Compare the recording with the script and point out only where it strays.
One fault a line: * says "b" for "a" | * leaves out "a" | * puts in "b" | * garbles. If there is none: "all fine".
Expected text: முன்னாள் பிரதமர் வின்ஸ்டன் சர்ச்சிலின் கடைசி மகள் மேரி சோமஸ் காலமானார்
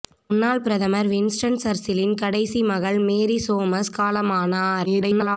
* garbles